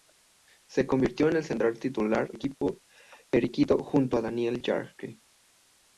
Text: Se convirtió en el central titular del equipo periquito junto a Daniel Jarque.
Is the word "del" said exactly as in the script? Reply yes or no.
no